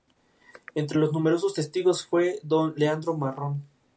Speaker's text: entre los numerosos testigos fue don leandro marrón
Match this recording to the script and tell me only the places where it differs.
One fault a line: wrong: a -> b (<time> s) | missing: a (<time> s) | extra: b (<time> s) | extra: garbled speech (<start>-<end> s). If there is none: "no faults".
no faults